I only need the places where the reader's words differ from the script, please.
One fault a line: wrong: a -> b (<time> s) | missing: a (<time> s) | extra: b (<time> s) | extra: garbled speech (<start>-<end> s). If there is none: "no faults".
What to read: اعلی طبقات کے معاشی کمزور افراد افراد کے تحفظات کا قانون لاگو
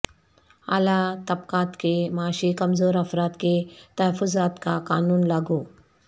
missing: افراد (3.4 s)